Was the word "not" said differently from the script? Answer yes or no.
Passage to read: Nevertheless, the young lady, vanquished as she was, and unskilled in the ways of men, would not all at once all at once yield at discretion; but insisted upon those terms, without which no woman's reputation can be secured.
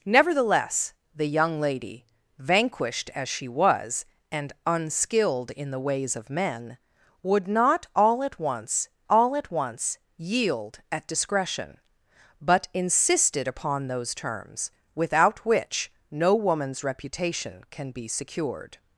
no